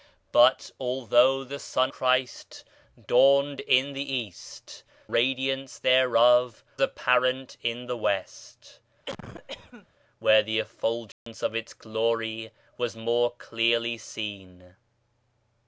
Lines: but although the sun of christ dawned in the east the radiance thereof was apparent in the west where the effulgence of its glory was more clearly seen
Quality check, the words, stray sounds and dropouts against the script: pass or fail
fail